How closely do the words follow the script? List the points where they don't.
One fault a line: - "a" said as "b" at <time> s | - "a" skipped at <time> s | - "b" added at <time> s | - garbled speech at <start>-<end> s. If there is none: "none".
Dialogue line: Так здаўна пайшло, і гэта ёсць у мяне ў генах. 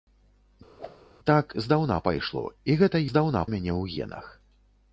- "ёсць" said as "здаўна" at 3.1 s